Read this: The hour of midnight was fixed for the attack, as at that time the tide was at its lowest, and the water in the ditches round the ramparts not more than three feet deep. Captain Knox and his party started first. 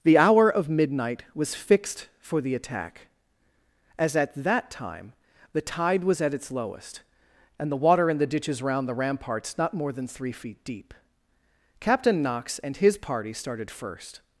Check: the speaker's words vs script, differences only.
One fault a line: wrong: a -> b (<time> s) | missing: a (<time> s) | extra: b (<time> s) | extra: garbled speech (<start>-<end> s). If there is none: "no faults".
no faults